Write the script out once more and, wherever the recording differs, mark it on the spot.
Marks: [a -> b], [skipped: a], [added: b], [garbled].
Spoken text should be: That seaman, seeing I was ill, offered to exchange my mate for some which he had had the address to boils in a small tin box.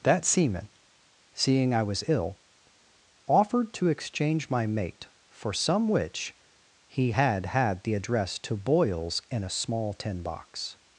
That seaman, seeing I was ill, offered to exchange my mate for some which he had had the address to boils in a small tin box.